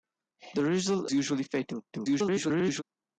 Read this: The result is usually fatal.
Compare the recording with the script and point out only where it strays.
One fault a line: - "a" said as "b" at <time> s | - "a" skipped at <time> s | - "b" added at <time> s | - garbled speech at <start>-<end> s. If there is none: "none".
- "is" skipped at 1.1 s
- garbled speech at 1.9-2.8 s